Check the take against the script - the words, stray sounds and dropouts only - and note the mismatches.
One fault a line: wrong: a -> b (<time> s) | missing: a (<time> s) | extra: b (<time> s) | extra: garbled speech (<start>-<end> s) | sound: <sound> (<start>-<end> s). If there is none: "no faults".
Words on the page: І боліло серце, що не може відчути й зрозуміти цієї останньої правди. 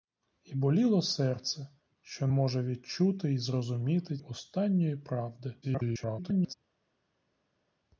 missing: не (2.3 s)
missing: цієї (4.2 s)
extra: garbled speech (5.6-6.5 s)